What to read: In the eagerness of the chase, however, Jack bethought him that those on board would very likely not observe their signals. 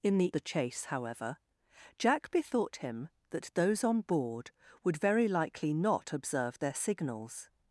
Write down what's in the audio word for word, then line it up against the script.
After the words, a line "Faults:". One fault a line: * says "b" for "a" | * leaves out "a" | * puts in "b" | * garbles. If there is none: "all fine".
In the the chase, however, Jack bethought him that those on board would very likely not observe their signals.
Faults:
* leaves out "eagerness of"